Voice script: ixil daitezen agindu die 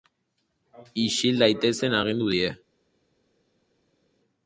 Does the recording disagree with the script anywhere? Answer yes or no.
no